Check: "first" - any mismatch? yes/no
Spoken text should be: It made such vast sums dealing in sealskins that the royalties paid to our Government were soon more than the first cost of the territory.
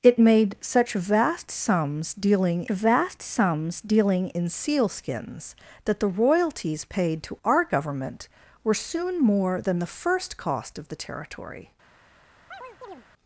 no